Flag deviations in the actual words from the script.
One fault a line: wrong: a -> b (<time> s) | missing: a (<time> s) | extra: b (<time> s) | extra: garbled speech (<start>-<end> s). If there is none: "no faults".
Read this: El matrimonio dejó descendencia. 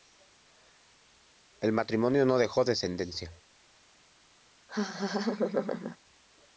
extra: no (2.2 s)